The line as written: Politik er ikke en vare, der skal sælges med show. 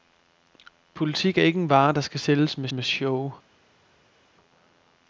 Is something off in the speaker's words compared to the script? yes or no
yes